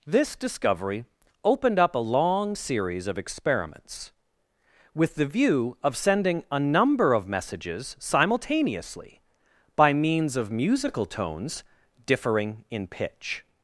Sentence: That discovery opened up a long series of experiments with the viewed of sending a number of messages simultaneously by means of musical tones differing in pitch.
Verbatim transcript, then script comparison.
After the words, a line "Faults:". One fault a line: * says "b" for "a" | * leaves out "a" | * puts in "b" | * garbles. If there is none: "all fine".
This discovery opened up a long series of experiments with the view of sending a number of messages simultaneously by means of musical tones differing in pitch.
Faults:
* says "This" for "That"
* says "view" for "viewed"